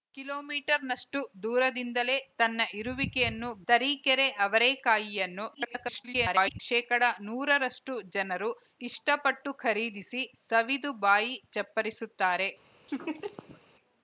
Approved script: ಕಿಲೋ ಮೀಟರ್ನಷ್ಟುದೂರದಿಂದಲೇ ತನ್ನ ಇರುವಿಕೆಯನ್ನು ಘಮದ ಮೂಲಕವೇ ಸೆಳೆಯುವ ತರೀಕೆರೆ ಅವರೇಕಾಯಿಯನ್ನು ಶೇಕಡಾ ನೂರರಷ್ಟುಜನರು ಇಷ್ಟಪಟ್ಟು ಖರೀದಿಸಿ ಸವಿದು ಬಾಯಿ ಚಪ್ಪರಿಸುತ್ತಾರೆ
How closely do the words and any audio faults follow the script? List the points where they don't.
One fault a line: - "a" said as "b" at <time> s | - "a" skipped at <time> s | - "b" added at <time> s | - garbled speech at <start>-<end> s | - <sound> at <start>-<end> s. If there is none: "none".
- "ಘಮದ ಮೂಲಕವೇ ಸೆಳೆಯುವ" skipped at 3.5 s
- garbled speech at 5.5-6.6 s
- laugh at 12.9-13.6 s